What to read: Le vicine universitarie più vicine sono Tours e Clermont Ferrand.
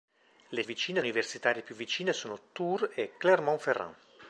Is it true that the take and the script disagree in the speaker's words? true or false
false